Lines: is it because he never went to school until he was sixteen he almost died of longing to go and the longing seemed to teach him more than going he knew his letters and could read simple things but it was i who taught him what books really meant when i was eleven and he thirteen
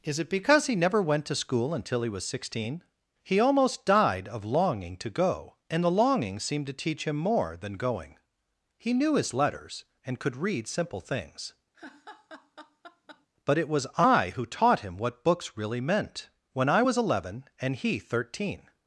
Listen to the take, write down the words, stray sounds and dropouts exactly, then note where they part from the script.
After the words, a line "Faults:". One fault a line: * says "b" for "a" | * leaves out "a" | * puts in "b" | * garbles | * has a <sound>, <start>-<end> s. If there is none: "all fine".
is it because he never went to school until he was sixteen he almost died of longing to go and the longing seemed to teach him more than going he knew his letters and could read simple things but it was i who taught him what books really meant when i was eleven and he thirteen
Faults:
* has a laugh, 11.7-13.3 s